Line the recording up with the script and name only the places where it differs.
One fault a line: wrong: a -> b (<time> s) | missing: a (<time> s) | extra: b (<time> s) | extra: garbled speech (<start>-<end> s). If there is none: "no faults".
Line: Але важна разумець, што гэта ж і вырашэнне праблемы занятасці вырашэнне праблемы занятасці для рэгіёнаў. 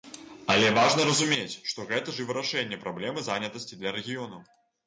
missing: вырашэнне праблемы занятасці (3.8 s)